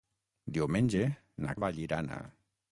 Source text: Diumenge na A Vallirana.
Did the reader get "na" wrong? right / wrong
right